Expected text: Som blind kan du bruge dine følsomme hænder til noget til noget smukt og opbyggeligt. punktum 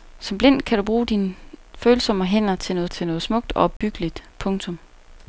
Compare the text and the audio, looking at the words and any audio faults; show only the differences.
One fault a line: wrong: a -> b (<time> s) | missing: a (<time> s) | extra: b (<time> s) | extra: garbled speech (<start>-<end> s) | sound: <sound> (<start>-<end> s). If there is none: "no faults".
sound: dropout (3.8-3.8 s)